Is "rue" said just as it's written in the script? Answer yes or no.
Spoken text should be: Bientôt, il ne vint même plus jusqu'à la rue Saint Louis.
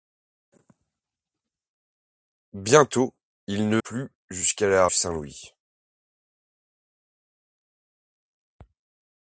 no